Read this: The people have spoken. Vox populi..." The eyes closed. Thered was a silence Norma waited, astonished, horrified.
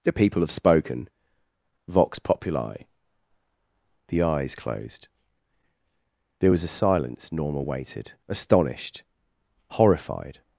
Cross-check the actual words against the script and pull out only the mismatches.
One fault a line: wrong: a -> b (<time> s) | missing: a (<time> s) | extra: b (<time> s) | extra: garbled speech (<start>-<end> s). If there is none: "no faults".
wrong: Thered -> There (6.4 s)